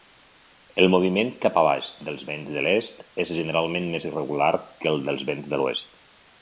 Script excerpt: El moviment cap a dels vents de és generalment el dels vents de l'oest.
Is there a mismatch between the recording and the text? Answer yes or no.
yes